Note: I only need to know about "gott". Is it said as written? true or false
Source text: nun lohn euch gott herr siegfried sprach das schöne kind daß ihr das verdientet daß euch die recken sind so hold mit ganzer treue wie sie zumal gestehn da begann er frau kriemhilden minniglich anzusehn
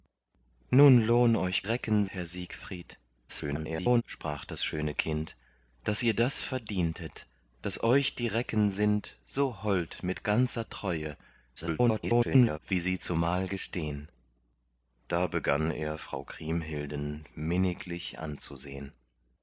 false